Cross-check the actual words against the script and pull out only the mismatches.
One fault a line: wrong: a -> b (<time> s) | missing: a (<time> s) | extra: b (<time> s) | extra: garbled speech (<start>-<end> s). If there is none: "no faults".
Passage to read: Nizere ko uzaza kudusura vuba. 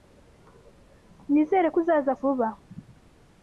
missing: kudusura (2.1 s)